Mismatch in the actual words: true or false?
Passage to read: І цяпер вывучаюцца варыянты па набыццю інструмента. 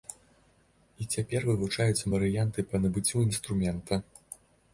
false